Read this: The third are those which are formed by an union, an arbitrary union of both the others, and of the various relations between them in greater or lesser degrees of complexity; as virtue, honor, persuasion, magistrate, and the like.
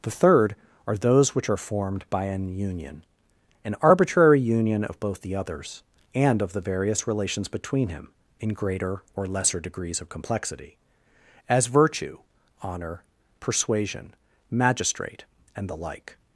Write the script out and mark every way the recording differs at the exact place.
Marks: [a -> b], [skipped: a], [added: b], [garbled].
The third are those which are formed by an union, an arbitrary union of both the others, and of the various relations between [them -> him] in greater or lesser degrees of complexity; as virtue, honor, persuasion, magistrate, and the like.